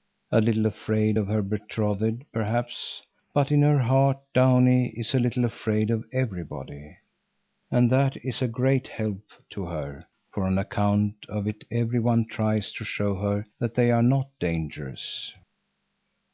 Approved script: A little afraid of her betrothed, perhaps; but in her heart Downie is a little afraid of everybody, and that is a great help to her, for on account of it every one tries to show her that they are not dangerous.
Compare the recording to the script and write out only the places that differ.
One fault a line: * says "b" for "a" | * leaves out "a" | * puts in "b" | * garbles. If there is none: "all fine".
all fine